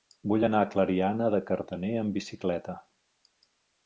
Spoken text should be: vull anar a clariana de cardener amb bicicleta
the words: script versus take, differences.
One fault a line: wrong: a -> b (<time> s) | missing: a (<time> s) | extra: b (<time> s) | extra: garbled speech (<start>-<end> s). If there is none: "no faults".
no faults